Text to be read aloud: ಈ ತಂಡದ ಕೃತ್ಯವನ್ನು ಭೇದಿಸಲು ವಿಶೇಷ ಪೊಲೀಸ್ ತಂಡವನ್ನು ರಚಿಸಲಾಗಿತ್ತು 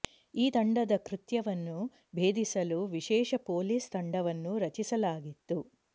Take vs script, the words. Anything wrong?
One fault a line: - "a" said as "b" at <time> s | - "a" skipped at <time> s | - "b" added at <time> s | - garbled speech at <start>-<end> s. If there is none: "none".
none